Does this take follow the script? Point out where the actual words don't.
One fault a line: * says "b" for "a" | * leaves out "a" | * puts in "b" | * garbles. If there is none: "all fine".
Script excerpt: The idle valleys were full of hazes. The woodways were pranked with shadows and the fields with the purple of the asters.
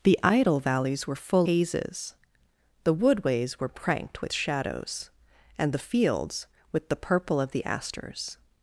* leaves out "of"